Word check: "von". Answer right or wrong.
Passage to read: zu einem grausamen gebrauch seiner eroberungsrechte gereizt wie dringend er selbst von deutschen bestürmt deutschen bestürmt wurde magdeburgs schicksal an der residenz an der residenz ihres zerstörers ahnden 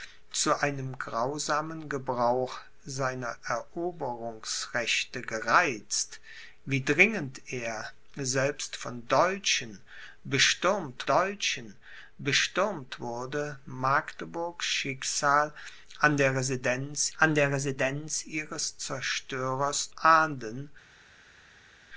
right